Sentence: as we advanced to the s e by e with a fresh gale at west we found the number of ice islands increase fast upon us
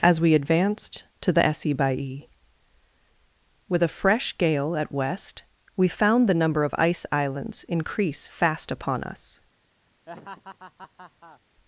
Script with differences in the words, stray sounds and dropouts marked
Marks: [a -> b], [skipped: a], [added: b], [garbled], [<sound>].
as we advanced to the s e by e with a fresh gale at west we found the number of ice islands increase fast upon us [laugh]